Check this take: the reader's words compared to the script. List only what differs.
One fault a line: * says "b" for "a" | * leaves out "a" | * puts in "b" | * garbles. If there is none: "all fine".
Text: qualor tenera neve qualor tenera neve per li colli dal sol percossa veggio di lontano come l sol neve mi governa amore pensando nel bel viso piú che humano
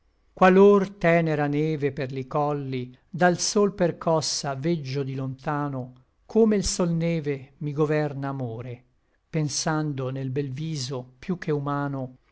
* leaves out "qualor tenera neve"